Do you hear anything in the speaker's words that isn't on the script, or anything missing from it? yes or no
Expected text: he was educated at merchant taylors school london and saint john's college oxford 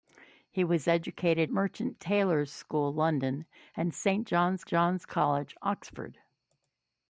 yes